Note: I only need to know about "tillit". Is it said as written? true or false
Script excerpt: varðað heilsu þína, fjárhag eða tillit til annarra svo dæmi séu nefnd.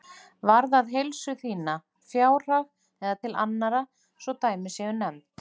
false